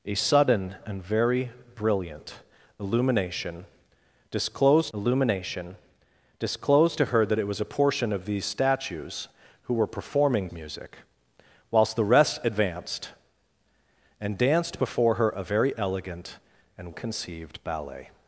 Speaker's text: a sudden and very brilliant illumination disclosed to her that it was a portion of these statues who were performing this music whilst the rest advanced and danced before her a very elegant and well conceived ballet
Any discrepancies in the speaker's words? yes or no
yes